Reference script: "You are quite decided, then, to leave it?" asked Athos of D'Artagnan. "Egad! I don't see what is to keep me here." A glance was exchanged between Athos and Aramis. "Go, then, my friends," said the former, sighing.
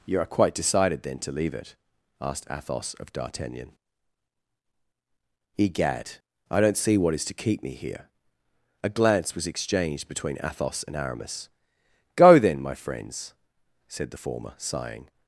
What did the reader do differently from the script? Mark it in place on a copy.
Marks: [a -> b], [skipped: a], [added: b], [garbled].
"You are quite decided, then, to leave it?" asked Athos of D'Artagnan. "Egad! I don't see what is to keep me here." A glance was exchanged between Athos and Aramis. "Go, then, my friends," said the former, sighing.